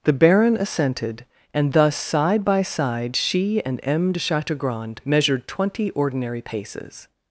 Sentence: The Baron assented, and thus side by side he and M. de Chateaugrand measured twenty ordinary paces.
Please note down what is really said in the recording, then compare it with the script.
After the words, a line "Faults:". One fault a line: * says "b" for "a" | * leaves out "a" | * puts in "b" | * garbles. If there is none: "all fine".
The Baron assented, and thus side by side she and M. de Chateaugrand measured twenty ordinary paces.
Faults:
* says "she" for "he"